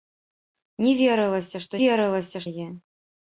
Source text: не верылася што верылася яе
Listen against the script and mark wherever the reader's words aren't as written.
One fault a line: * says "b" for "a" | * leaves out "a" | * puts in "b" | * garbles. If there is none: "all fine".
all fine